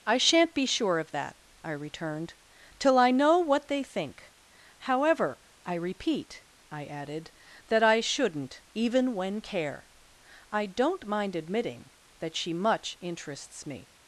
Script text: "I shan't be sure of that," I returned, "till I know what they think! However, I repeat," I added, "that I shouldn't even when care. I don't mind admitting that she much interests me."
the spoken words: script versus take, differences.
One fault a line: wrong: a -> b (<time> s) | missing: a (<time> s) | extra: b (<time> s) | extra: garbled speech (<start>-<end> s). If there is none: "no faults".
no faults